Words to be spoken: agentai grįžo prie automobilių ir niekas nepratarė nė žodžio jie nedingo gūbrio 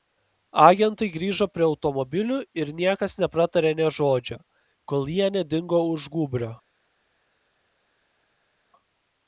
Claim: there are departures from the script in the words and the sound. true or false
true